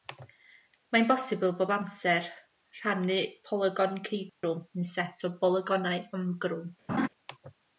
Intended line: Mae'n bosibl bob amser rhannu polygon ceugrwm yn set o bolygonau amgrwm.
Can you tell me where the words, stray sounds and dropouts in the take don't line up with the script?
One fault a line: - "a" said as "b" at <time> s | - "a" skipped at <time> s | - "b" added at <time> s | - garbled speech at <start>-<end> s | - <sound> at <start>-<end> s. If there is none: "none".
- dropout at 4.3-4.4 s
- laugh at 6.9-7.1 s